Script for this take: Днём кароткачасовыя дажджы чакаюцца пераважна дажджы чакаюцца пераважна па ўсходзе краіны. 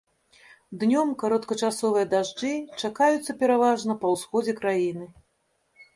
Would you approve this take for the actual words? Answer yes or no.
no